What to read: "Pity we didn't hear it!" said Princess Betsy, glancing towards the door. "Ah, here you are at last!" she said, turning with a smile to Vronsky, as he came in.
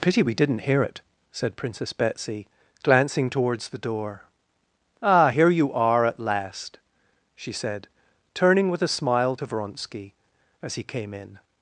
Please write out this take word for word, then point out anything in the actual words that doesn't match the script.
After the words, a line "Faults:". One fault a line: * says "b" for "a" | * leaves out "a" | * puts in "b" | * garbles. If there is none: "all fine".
"Pity we didn't hear it!" said Princess Betsy, glancing towards the door. "Ah, here you are at last!" she said, turning with a smile to Vronsky, as he came in.
Faults:
all fine